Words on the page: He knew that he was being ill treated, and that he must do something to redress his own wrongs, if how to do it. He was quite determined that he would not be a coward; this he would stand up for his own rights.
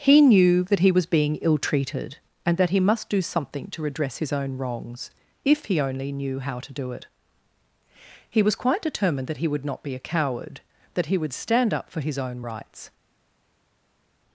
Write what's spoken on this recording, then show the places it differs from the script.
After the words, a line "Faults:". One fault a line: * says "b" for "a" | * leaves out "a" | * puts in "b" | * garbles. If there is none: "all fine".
He knew that he was being ill treated, and that he must do something to redress his own wrongs, if he only knew how to do it. He was quite determined that he would not be a coward; that he would stand up for his own rights.
Faults:
* puts in "he only knew"
* says "that" for "this"